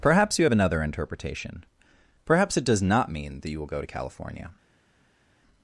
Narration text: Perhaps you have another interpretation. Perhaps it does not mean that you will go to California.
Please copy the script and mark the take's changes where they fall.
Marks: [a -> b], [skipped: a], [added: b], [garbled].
Perhaps you have another interpretation. Perhaps it does not mean that you will go to California.